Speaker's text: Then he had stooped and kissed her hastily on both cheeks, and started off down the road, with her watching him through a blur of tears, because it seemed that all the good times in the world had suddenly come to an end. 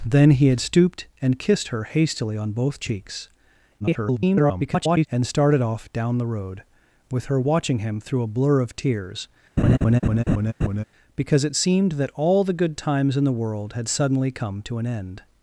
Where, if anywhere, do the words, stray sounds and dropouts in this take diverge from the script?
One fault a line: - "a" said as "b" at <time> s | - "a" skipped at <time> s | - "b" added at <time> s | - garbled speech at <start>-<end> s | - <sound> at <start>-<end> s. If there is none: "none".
- garbled speech at 3.8-5.1 s
- laugh at 9.6-10.8 s